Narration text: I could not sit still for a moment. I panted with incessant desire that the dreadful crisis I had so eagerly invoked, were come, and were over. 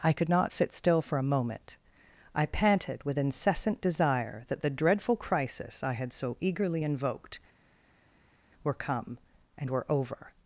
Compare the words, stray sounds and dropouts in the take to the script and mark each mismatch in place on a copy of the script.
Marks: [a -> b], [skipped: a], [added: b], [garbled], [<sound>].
I could not sit still for a moment. I panted with incessant desire that the dreadful crisis I had so eagerly invoked, were come, and were over.